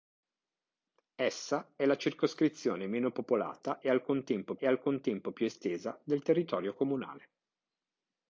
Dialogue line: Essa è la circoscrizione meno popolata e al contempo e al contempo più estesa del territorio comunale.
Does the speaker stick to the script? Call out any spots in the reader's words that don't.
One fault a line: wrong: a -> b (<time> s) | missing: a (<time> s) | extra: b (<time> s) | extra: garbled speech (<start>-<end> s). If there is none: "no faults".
no faults